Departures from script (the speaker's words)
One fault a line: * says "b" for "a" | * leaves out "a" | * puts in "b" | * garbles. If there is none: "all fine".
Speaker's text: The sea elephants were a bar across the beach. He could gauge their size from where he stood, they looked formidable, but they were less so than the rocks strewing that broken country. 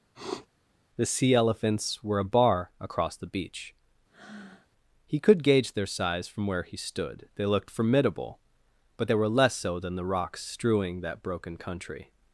all fine